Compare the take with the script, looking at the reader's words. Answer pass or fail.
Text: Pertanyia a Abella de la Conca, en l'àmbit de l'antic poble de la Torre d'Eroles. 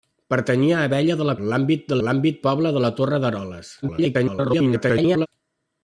fail